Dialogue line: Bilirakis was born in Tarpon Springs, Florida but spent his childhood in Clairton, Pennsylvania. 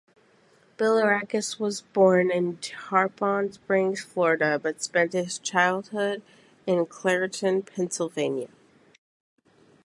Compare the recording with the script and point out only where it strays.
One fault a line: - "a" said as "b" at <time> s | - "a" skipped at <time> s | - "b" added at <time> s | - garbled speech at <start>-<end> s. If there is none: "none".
none